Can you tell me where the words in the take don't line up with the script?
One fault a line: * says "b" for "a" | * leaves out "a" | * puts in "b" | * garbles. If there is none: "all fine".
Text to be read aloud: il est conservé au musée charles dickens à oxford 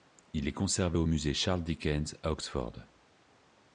all fine